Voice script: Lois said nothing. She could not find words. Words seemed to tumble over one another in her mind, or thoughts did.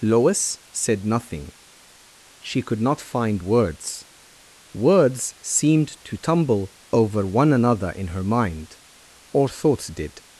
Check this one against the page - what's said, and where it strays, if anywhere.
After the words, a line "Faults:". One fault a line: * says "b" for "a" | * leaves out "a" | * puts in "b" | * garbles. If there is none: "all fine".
Lois said nothing. She could not find words. Words seemed to tumble over one another in her mind, or thoughts did.
Faults:
all fine